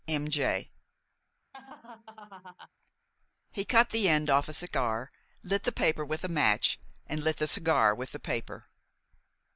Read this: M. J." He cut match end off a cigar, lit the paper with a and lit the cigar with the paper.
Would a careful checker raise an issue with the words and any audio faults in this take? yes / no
yes